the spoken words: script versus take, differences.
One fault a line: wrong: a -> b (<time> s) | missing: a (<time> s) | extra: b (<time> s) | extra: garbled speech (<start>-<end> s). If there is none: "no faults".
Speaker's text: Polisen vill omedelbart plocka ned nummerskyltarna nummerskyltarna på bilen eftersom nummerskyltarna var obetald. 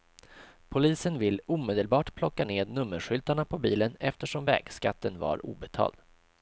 missing: nummerskyltarna (3.5 s)
wrong: nummerskyltarna -> vägskatten (4.4 s)